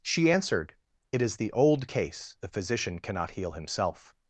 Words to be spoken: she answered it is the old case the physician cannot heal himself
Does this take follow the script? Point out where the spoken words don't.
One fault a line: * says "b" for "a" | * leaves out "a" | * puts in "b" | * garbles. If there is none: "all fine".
all fine